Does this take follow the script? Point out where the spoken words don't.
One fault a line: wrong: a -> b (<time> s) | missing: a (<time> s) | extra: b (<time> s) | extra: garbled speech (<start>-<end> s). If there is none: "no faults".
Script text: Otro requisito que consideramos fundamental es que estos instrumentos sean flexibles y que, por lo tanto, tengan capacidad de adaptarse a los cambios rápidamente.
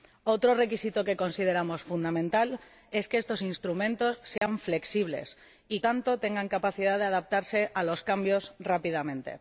missing: que por lo (5.8 s)